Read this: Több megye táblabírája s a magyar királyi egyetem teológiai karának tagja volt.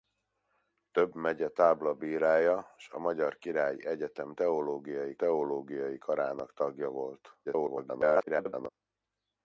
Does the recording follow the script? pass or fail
fail